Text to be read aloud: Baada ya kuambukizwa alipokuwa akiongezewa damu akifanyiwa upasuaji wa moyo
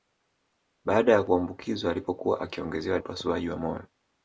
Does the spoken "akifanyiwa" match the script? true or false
false